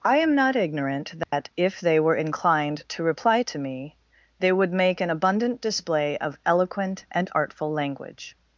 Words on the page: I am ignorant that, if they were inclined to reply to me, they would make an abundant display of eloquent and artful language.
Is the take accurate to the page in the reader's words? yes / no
no